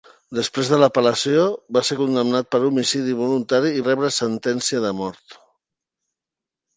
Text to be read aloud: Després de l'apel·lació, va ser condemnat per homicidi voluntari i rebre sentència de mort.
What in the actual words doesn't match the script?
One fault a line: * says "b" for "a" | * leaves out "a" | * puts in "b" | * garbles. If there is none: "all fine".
all fine